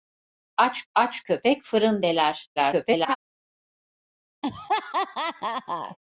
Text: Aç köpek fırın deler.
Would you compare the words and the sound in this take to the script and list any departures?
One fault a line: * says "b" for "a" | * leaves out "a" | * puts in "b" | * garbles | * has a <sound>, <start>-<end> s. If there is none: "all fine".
* puts in "aç"
* garbles
* has a laugh, 4.4-6.0 s